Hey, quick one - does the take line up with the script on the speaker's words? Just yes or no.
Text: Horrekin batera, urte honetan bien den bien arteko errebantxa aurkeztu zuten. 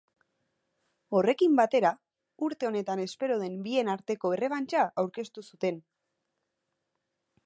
no